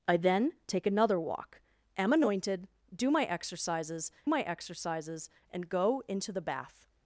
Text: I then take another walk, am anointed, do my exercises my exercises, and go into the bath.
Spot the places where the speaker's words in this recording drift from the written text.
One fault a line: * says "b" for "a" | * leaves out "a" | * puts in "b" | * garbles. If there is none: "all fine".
all fine